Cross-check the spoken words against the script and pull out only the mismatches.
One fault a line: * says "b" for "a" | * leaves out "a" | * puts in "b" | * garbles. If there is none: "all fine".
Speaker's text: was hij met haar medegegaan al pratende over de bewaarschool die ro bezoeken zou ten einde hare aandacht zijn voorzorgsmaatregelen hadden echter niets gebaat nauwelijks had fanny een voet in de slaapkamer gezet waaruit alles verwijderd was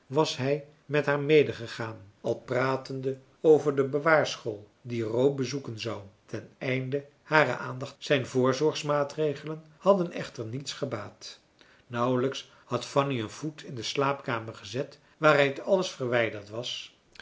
all fine